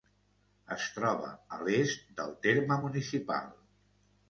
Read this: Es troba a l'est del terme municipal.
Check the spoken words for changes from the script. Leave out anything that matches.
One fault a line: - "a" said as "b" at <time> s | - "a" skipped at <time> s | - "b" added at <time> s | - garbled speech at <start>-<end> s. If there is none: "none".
none